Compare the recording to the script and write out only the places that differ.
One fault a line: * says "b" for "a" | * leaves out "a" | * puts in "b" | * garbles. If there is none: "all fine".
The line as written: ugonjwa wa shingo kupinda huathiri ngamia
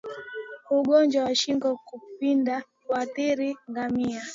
all fine